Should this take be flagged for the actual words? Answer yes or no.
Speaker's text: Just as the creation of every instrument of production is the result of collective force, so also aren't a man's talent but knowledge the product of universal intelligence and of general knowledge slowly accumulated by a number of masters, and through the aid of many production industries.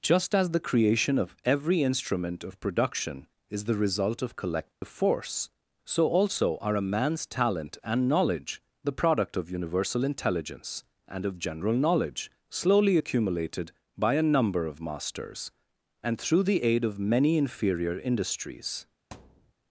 yes